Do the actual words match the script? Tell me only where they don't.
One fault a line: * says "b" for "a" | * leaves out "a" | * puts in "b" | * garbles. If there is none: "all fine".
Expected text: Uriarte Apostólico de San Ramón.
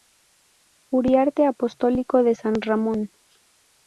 all fine